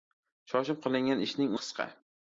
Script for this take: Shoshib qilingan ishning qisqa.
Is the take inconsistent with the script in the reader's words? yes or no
no